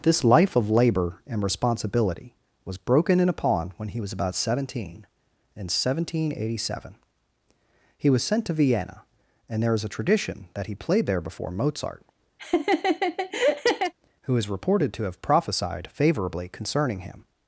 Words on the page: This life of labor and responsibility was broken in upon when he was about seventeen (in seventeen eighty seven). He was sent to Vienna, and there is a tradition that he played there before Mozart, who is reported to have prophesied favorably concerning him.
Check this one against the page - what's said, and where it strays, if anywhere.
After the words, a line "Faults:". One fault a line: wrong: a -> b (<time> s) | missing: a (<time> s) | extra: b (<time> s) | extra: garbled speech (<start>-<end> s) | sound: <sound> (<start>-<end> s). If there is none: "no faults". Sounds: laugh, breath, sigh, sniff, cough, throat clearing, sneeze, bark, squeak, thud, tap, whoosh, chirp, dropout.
This life of labor and responsibility was broken in upon when he was about seventeen (in seventeen eighty seven). He was sent to Vienna, and there is a tradition that he played there before Mozart, who is reported to have prophesied favorably concerning him.
Faults:
sound: laugh (12.4-13.9 s)